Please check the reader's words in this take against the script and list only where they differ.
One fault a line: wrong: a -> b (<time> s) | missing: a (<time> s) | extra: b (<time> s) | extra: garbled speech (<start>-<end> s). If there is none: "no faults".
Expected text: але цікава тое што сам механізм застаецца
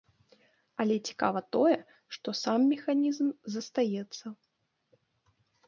no faults